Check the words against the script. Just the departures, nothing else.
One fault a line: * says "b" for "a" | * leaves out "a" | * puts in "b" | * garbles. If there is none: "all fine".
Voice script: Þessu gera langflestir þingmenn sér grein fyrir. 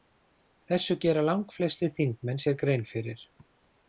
all fine